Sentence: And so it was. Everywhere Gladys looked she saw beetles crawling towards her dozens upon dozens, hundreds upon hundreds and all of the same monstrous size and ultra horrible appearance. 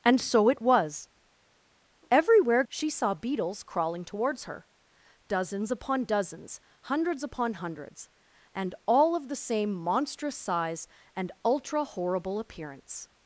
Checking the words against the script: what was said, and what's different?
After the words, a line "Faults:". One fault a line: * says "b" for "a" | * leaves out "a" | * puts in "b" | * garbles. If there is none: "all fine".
And so it was. Everywhere She saw beetles crawling towards her dozens upon dozens, hundreds upon hundreds and all of the same monstrous size and ultra horrible appearance.
Faults:
* leaves out "Gladys looked"